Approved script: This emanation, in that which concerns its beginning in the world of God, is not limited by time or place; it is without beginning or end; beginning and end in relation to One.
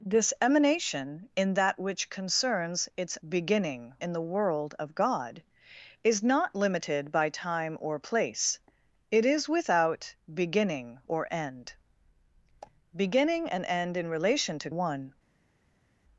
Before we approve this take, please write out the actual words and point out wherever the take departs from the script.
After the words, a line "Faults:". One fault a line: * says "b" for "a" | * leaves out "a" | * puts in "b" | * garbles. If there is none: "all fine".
This emanation, in that which concerns its beginning in the world of God, is not limited by time or place; it is without beginning or end; beginning and end in relation to One.
Faults:
all fine